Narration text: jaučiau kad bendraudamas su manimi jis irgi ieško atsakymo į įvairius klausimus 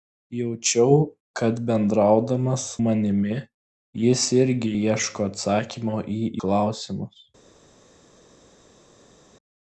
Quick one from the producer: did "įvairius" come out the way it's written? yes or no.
no